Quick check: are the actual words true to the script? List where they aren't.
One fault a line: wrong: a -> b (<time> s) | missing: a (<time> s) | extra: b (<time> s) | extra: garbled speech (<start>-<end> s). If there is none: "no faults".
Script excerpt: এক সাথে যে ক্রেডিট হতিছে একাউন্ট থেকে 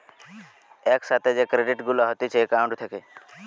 extra: গুলা (1.9 s)